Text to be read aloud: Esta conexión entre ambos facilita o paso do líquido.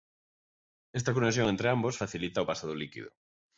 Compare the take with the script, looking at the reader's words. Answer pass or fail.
pass